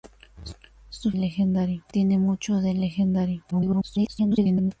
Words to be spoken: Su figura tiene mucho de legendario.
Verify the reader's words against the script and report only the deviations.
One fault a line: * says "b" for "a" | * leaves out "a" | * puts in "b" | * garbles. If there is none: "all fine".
* says "legendario" for "figura"
* garbles